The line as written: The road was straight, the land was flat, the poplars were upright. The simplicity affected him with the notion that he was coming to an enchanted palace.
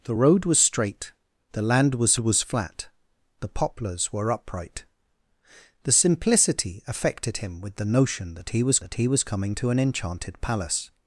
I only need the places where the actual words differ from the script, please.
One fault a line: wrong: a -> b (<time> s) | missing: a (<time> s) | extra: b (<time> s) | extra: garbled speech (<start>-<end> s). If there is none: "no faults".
extra: was (2.2 s)
extra: that he was (8.8 s)